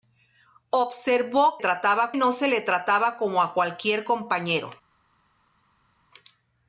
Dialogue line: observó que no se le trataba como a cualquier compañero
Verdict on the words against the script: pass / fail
fail